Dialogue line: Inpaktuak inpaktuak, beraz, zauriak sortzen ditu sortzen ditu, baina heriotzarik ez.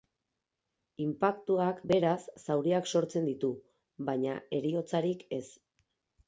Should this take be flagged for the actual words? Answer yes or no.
yes